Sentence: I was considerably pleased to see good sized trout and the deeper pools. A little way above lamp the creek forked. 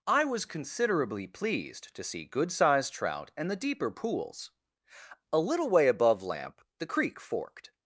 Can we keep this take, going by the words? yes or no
yes